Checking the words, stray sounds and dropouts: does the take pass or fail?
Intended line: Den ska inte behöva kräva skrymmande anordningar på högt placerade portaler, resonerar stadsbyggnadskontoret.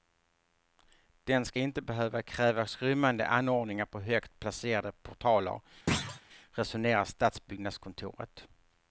fail